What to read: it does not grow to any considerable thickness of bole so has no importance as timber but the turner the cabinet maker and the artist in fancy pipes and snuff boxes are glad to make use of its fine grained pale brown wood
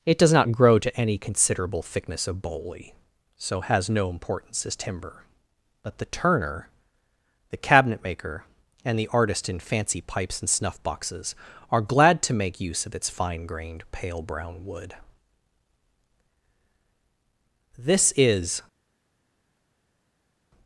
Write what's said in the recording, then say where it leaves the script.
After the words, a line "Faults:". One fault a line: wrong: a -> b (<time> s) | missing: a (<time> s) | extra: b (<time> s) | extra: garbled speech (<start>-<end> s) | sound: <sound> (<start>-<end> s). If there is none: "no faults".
it does not grow to any considerable thickness of bole so has no importance as timber but the turner the cabinet maker and the artist in fancy pipes and snuff boxes are glad to make use of its fine grained pale brown wood this is
Faults:
extra: this is (17.8 s)